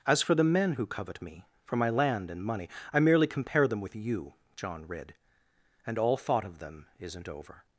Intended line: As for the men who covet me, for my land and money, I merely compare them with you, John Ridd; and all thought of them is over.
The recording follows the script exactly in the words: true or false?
false